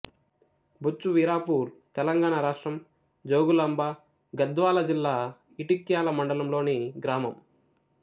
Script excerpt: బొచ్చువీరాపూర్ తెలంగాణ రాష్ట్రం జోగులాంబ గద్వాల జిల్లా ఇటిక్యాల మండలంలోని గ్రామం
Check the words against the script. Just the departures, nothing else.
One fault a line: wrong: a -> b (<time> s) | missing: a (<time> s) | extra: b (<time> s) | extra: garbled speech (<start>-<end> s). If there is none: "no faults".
no faults